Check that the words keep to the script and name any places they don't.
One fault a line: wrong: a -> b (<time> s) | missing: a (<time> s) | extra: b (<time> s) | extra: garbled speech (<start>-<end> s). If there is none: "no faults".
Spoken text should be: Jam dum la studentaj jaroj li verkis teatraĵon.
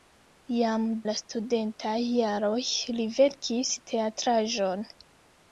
missing: dum (0.9 s)